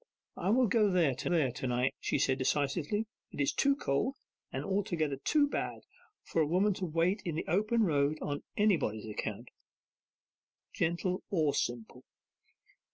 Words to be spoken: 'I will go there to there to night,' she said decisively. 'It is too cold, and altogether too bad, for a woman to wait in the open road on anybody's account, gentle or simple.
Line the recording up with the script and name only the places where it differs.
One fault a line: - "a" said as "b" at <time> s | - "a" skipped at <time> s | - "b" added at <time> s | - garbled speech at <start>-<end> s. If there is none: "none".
none